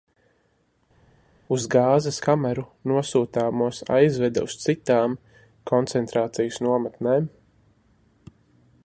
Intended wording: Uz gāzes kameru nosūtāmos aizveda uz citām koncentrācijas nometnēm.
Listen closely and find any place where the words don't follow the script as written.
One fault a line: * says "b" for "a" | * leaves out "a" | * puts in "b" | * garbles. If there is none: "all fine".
all fine